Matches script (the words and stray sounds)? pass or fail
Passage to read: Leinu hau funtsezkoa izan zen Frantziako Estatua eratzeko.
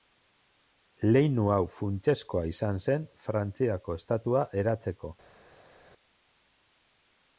pass